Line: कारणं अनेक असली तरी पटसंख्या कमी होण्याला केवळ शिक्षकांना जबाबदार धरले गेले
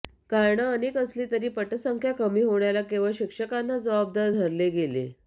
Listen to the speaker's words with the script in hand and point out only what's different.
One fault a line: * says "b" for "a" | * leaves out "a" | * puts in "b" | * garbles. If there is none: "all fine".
all fine